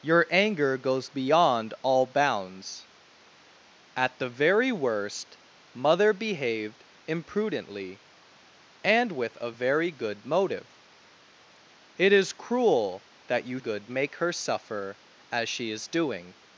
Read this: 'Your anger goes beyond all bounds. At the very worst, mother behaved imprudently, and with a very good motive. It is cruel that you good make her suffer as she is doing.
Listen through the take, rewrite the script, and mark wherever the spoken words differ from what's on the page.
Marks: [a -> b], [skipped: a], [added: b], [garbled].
'Your anger goes beyond all bounds. At the very worst, mother behaved imprudently, and with a very good motive. It is cruel that you good make her suffer as she is doing.